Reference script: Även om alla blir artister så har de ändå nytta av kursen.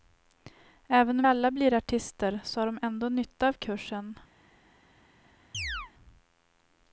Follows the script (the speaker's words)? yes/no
yes